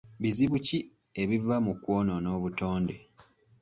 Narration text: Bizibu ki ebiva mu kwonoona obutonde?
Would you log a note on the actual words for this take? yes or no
no